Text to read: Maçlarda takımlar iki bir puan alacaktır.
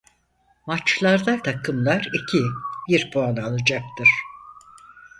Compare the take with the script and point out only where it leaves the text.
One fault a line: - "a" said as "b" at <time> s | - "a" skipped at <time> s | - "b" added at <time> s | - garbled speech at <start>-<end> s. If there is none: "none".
none